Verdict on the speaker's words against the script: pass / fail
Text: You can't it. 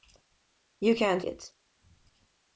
pass